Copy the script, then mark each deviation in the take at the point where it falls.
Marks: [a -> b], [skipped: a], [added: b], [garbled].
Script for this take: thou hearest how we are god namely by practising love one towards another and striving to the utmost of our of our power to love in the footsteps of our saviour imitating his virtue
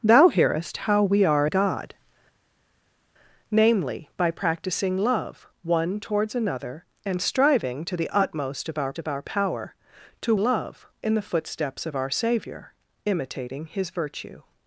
thou hearest how we are god namely by practising love one towards another and striving to the utmost of our of our power to love in the footsteps of our saviour imitating his virtue